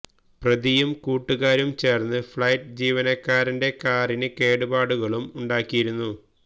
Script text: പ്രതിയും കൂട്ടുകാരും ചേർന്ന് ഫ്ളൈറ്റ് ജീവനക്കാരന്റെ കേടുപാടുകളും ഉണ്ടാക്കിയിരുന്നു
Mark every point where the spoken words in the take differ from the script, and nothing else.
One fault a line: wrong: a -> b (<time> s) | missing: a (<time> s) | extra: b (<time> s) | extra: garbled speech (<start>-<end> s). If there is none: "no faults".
extra: കാറിന് (3.8 s)